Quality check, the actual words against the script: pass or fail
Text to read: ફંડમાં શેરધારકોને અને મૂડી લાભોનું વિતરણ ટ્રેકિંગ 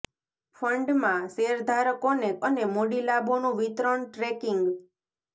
pass